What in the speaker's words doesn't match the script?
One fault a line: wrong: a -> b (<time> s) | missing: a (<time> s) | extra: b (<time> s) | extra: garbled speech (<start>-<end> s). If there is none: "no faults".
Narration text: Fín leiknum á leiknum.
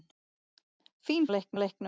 no faults